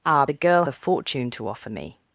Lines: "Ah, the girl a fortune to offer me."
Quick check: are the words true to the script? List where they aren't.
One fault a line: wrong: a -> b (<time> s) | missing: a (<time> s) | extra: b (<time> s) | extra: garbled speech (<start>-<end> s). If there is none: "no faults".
no faults